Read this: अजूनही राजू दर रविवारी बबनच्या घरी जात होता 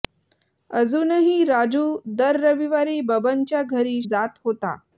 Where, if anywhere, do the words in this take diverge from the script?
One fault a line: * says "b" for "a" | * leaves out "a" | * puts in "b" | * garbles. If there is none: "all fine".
all fine